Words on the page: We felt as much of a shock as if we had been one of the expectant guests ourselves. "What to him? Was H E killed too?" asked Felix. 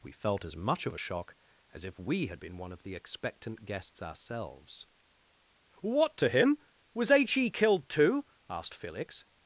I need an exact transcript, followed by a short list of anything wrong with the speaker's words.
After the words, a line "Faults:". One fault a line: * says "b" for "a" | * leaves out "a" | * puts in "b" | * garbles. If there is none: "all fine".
We felt as much of a shock as if we had been one of the expectant guests ourselves. "What to him? Was H E killed too?" asked Felix.
Faults:
all fine